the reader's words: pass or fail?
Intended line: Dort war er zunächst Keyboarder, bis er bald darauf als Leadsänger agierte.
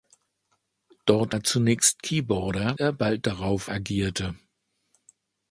fail